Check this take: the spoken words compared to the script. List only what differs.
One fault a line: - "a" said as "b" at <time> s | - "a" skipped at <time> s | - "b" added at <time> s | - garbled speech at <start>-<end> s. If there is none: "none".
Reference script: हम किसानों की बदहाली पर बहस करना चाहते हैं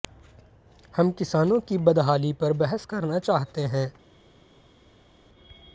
none